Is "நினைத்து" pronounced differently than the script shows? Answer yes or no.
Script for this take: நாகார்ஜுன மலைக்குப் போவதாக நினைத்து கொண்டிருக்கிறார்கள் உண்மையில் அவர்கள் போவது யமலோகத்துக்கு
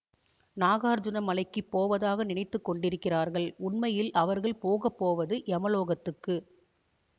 no